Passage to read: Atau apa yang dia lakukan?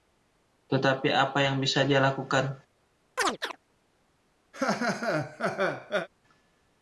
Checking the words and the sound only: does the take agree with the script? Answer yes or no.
no